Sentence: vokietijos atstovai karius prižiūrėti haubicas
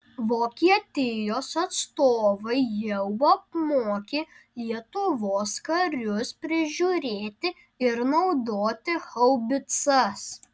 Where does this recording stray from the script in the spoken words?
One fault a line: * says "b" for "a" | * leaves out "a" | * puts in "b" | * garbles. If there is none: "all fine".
* puts in "jau apmokė lietuvos"
* puts in "ir naudoti"